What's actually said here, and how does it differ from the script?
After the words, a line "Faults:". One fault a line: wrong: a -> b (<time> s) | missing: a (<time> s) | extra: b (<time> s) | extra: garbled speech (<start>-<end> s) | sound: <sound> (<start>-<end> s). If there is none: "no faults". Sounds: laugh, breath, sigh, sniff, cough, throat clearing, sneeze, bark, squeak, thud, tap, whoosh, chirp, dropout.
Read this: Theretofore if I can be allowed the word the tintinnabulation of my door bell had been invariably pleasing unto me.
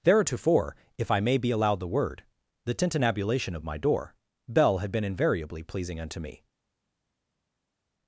Theretofore if I may be allowed the word the tintinnabulation of my door bell had been invariably pleasing unto me.
Faults:
wrong: can -> may (1.2 s)